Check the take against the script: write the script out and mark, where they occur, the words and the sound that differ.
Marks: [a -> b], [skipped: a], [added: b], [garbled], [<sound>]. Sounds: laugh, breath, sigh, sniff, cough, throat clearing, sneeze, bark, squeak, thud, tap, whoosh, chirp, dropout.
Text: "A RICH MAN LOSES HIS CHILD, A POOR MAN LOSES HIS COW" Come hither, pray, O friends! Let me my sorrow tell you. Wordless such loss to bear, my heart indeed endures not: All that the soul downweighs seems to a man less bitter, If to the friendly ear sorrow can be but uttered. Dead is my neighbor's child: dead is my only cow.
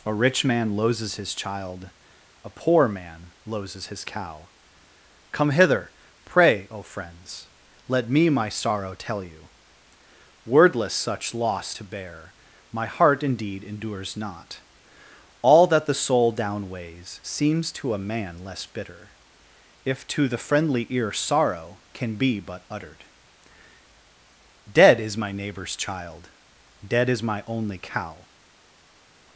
"A RICH MAN LOSES HIS CHILD, A POOR MAN LOSES HIS COW" Come hither, pray, O friends! Let me my sorrow tell you. Wordless such loss to bear, my heart indeed endures not: All that the soul downweighs seems to a man less bitter, If to the friendly ear sorrow can be but uttered. Dead is my neighbor's child: dead is my only cow.